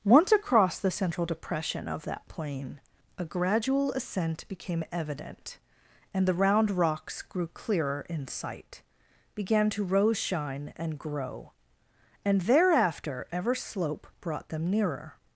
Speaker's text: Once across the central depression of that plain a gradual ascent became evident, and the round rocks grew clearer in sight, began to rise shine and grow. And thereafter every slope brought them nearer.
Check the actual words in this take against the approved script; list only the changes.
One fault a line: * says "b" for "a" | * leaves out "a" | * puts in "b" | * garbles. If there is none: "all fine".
* says "rose" for "rise"
* says "ever" for "every"